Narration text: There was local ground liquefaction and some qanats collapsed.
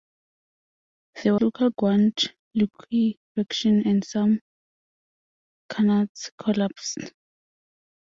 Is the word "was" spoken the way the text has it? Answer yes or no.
no